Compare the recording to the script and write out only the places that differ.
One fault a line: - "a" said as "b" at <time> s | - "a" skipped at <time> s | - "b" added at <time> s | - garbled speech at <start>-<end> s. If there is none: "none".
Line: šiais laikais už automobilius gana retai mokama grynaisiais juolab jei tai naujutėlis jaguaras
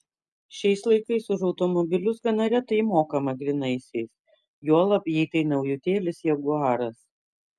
none